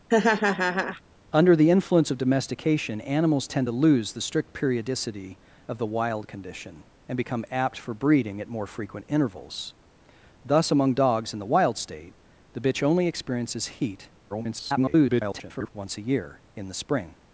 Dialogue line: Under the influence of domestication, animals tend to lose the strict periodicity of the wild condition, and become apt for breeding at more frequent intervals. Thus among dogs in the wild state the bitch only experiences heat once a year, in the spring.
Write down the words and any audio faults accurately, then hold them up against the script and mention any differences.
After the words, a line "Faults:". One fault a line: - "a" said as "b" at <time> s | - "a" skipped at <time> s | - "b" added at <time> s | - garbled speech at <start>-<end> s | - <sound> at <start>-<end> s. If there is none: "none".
Under the influence of domestication, animals tend to lose the strict periodicity of the wild condition, and become apt for breeding at more frequent intervals. Thus among dogs in the wild state the bitch only experiences heat [garbled] once a year, in the spring.
Faults:
- laugh at 0.1-1.0 s
- garbled speech at 14.3-15.7 s